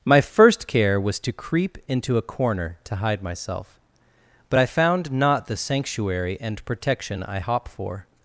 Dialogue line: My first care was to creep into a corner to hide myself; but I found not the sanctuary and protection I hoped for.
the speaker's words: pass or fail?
fail